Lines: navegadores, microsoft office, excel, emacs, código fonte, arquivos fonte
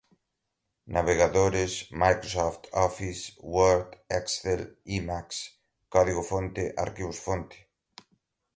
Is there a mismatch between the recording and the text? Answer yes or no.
yes